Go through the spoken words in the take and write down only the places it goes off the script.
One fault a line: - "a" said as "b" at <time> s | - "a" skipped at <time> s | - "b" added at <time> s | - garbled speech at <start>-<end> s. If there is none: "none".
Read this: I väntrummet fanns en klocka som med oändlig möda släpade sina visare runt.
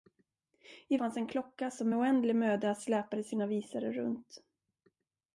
- "väntrummet" skipped at 1.0 s